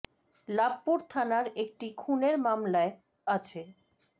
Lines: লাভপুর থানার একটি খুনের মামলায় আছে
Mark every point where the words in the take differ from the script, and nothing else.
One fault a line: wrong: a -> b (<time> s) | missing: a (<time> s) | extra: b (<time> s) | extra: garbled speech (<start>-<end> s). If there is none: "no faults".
no faults